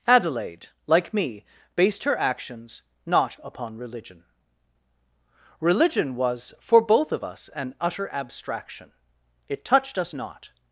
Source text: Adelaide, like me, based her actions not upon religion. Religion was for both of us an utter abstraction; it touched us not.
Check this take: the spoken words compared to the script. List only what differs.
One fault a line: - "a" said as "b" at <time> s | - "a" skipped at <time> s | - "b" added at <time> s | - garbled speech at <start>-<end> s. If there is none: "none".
none